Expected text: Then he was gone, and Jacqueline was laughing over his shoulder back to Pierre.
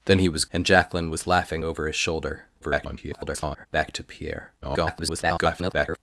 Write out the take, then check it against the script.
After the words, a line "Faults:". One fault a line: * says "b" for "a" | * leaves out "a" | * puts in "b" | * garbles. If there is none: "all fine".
Then he was and Jacqueline was laughing over his shoulder [garbled] back to Pierre. [garbled]
Faults:
* leaves out "gone"
* garbles
* garbles